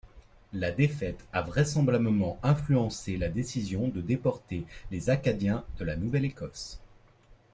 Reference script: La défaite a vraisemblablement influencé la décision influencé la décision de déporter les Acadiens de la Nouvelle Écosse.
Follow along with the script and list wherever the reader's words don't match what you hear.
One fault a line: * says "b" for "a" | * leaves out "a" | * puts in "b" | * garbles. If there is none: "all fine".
* leaves out "influencé la décision"